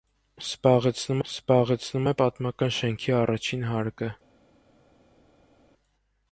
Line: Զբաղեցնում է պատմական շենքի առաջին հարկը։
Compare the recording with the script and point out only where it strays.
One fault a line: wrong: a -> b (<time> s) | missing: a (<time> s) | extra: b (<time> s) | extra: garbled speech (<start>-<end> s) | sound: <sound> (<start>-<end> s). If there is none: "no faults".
extra: զբաղեցնում (1.3 s)